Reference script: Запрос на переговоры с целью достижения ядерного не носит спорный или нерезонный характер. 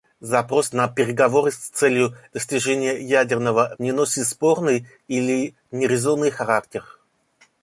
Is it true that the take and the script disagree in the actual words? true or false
false